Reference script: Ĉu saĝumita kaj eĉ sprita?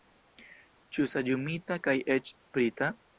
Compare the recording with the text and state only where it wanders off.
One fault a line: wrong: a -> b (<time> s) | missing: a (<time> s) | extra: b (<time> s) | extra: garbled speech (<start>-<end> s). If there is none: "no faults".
no faults